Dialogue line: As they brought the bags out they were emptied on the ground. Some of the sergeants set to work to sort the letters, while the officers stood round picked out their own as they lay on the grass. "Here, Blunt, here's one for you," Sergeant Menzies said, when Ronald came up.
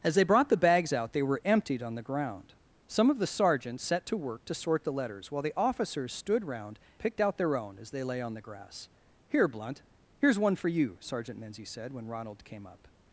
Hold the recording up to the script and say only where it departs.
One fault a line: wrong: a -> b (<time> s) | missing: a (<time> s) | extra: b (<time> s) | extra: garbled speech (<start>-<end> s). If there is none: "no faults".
no faults